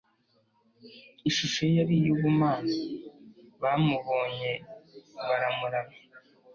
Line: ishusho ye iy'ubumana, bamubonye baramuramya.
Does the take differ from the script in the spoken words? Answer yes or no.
yes